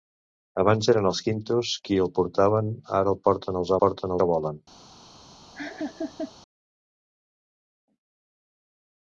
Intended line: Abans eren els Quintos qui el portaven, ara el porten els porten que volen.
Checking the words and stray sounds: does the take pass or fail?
fail